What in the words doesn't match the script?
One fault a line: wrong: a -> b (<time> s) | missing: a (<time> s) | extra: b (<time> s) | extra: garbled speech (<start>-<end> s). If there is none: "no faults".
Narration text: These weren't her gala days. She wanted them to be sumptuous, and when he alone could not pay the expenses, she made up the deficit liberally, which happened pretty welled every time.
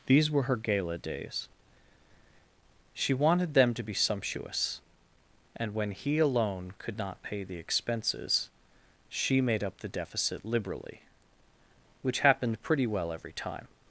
wrong: weren't -> were (0.3 s)
wrong: welled -> well (12.9 s)